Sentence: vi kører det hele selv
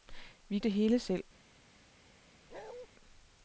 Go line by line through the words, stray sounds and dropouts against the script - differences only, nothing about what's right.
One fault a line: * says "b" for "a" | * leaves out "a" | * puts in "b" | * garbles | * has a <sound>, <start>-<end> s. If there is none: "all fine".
* leaves out "kører"
* has a bark, 2.5-2.9 s